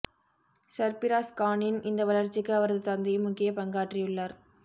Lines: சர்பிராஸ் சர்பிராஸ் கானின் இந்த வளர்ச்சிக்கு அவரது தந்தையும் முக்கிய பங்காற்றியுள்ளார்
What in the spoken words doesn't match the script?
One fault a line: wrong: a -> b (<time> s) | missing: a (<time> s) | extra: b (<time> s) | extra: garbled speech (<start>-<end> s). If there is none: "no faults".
missing: சர்பிராஸ் (1.3 s)